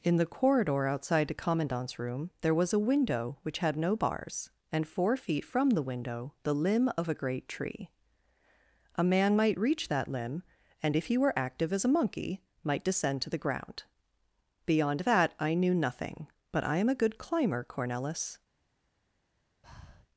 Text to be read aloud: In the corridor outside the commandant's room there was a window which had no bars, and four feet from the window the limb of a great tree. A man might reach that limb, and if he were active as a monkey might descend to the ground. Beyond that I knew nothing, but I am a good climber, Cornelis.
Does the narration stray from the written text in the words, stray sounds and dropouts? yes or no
yes